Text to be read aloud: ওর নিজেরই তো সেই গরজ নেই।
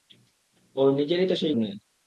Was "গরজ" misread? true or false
true